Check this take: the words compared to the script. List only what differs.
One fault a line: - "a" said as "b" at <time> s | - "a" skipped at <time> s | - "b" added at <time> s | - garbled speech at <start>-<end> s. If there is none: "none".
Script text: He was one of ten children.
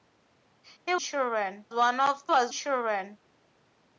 - "was" said as "children" at 1.0 s
- "ten" said as "was" at 2.3 s